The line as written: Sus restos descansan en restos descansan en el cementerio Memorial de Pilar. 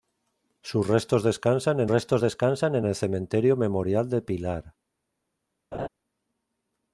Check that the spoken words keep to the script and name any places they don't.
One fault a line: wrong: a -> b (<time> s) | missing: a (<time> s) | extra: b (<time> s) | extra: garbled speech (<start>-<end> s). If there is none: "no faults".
no faults